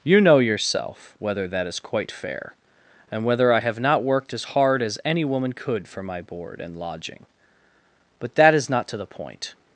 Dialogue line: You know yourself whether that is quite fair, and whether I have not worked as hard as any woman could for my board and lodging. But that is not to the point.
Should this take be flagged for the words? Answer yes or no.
no